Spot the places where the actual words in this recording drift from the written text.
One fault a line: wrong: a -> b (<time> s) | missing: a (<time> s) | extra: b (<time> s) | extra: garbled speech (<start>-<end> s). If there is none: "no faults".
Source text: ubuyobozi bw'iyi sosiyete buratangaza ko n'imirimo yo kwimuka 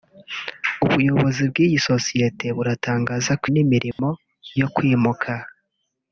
no faults